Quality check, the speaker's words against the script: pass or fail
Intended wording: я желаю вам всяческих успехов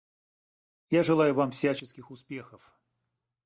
pass